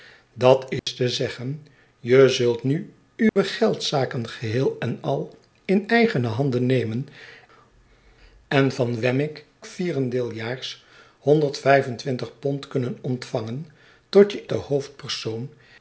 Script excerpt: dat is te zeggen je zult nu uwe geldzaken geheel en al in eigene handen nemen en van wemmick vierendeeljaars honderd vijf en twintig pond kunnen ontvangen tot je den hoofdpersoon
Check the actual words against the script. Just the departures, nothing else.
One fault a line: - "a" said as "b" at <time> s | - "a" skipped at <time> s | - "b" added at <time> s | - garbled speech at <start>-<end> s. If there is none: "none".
none